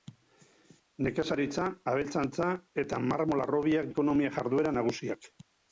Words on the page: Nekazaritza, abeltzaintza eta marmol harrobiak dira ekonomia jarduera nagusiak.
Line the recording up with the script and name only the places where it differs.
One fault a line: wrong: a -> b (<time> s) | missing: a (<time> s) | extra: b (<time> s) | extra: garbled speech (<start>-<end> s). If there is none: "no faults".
missing: dira (3.9 s)